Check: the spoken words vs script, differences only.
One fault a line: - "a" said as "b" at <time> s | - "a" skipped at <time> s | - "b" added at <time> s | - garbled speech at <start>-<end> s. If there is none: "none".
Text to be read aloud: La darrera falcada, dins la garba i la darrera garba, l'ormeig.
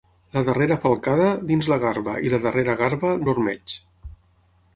none